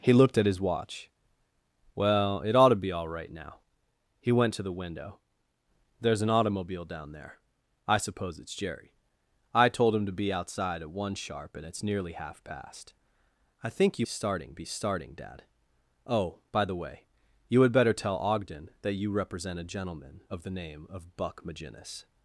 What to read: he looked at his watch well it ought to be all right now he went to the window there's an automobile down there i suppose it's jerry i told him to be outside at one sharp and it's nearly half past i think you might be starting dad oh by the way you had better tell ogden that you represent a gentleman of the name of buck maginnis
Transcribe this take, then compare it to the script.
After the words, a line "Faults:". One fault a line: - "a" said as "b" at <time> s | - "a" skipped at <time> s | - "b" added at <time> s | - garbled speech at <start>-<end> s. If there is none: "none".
he looked at his watch well it ought to be all right now he went to the window there's an automobile down there i suppose it's jerry i told him to be outside at one sharp and it's nearly half past i think you starting be starting dad oh by the way you had better tell ogden that you represent a gentleman of the name of buck maginnis
Faults:
- "might" said as "starting" at 14.0 s